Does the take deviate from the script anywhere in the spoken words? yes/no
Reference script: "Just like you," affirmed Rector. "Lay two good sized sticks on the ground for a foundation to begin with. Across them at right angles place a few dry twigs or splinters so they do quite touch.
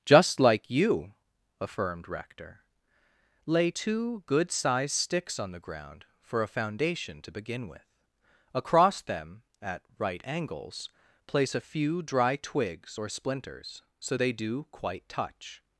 no